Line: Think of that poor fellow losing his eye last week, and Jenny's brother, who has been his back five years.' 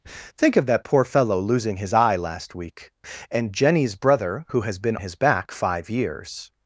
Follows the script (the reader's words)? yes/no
yes